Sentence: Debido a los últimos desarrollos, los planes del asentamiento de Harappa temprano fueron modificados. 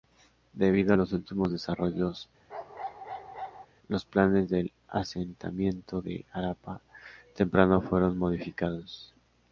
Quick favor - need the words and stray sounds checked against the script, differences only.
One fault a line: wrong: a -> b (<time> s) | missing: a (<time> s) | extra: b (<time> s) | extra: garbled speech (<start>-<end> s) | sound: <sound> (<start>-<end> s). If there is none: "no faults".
sound: bark (2.5-3.7 s)